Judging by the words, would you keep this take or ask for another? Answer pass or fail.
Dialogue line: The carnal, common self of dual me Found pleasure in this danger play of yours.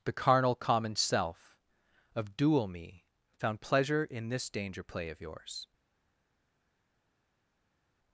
pass